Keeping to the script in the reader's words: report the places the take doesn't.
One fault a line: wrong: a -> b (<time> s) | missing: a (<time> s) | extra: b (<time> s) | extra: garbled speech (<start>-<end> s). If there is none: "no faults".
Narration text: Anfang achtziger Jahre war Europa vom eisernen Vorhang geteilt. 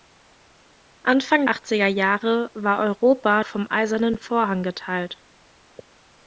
no faults